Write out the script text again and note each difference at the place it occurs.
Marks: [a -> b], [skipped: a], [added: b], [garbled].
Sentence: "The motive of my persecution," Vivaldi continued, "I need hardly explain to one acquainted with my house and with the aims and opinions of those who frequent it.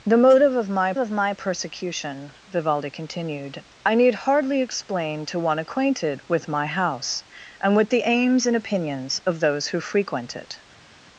"The motive of my [added: of my] persecution," Vivaldi continued, "I need hardly explain to one acquainted with my house and with the aims and opinions of those who frequent it.